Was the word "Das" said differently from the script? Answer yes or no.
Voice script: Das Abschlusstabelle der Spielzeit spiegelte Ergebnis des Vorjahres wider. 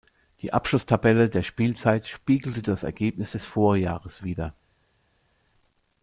yes